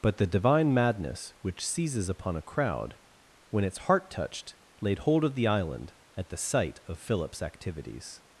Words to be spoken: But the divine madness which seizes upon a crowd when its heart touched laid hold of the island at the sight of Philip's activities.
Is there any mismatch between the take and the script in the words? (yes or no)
no